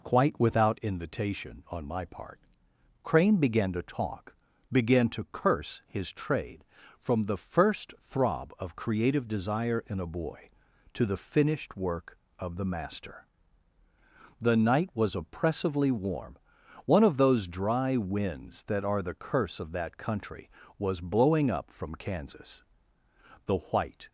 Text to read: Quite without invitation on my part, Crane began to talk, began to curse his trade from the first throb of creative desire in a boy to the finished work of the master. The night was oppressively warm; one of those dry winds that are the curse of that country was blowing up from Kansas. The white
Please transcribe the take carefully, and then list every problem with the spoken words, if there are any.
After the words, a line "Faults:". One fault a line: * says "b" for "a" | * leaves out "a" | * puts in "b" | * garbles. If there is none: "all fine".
Quite without invitation on my part, Crane began to talk, began to curse his trade from the first throb of creative desire in a boy to the finished work of the master. The night was oppressively warm; one of those dry winds that are the curse of that country was blowing up from Kansas. The white
Faults:
all fine